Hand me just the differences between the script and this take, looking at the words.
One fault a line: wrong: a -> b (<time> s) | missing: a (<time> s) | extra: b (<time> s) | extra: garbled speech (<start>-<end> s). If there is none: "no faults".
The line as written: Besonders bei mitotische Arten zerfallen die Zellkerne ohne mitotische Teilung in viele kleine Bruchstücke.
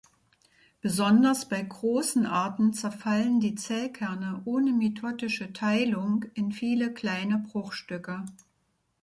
wrong: mitotische -> großen (1.6 s)